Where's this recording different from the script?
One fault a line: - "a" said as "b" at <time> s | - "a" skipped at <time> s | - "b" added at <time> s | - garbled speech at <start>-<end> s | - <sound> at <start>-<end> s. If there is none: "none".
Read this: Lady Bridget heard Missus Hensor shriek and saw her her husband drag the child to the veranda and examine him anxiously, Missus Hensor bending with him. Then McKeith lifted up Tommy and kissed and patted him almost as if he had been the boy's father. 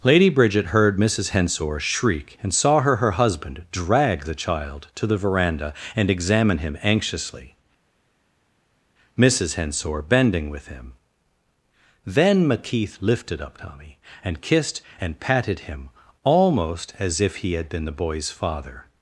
none